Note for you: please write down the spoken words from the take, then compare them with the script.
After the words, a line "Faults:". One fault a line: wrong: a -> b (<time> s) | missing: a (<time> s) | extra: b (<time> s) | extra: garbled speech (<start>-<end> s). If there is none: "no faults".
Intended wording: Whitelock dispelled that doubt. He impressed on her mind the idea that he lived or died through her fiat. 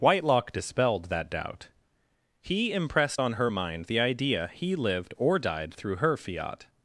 Whitelock dispelled that doubt. He impressed on her mind the idea he lived or died through her fiat.
Faults:
missing: that (4.5 s)